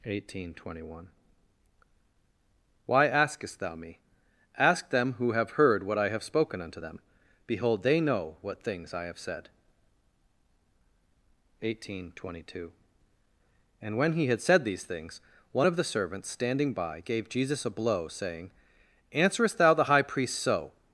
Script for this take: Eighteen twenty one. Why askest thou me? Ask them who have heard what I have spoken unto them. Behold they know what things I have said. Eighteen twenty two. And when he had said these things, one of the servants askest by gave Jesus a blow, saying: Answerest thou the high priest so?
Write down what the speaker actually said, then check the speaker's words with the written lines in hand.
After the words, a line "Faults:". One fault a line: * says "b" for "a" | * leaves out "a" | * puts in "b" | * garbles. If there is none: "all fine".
Eighteen twenty one. Why askest thou me? Ask them who have heard what I have spoken unto them. Behold they know what things I have said. Eighteen twenty two. And when he had said these things, one of the servants standing by gave Jesus a blow, saying: Answerest thou the high priest so?
Faults:
* says "standing" for "askest"